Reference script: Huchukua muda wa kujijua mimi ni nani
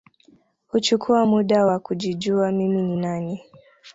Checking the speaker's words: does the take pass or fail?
pass